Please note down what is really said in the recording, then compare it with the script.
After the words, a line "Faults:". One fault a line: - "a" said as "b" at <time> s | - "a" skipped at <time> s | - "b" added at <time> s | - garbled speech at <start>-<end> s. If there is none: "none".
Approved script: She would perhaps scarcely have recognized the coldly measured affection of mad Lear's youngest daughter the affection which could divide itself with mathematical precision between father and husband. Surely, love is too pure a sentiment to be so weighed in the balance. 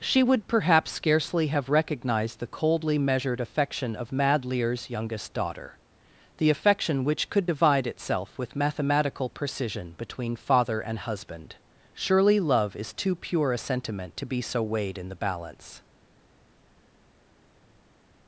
She would perhaps scarcely have recognized the coldly measured affection of mad Lear's youngest daughter the affection which could divide itself with mathematical precision between father and husband. Surely, love is too pure a sentiment to be so weighed in the balance.
Faults:
none